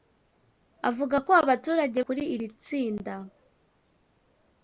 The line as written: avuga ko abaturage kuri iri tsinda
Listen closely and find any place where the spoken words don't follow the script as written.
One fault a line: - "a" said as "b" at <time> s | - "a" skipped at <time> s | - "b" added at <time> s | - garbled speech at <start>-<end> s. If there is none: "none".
none